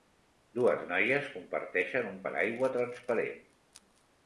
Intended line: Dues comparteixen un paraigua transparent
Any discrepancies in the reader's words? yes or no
yes